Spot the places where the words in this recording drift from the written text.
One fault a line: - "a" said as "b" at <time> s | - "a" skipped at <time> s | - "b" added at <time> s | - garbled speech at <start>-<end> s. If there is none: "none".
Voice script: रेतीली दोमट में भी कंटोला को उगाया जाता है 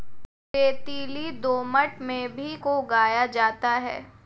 - "कंटोला" skipped at 2.5 s